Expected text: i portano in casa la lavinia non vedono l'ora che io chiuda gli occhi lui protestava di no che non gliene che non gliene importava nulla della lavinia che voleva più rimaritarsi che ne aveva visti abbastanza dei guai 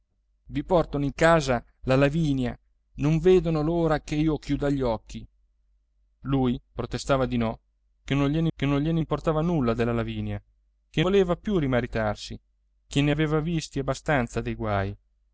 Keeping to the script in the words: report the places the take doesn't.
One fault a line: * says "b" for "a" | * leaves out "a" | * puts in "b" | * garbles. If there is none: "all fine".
all fine